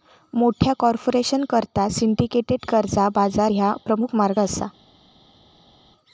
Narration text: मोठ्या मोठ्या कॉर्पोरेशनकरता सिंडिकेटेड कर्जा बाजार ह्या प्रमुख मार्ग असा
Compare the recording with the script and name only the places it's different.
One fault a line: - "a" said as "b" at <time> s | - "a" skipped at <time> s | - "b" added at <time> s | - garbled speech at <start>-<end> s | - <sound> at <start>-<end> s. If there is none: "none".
- "मोठ्या" skipped at 0.7 s